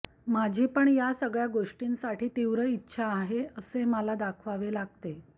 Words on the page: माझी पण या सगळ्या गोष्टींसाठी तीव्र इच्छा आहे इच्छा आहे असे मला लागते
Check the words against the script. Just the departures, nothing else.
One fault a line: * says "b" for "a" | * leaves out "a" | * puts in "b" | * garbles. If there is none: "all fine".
* leaves out "इच्छा आहे"
* puts in "दाखवावे"